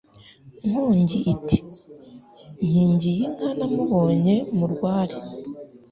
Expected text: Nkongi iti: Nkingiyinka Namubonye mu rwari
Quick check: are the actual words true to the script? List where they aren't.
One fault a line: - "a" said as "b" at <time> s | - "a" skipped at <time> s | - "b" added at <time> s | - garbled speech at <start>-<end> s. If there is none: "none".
none